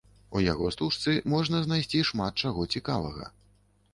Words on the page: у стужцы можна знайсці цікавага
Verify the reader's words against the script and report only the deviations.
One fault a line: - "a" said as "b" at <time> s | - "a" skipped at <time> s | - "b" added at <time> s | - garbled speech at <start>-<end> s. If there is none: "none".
- "яго" added at 0.4 s
- "шмат чаго" added at 2.1 s